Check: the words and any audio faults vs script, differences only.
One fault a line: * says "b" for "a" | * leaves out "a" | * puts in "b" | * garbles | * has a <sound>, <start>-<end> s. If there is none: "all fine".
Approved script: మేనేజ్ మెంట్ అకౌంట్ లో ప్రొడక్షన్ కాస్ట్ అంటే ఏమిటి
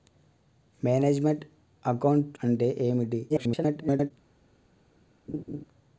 * leaves out "లో ప్రొడక్షన్ కాస్ట్"
* garbles
* has a laugh, 5.3-5.6 s